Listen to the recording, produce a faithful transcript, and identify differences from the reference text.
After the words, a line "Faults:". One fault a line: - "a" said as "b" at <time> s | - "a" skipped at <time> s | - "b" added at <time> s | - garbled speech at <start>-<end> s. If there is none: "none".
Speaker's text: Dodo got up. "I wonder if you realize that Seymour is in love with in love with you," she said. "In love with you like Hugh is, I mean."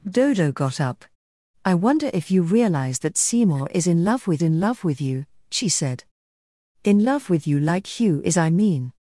Dodo got up. "I wonder if you realize that Seymour is in love with in love with you," she said. "In love with you like Hugh is, I mean."
Faults:
none